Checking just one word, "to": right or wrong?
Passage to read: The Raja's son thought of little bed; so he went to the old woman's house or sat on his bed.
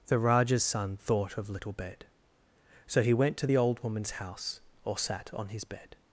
right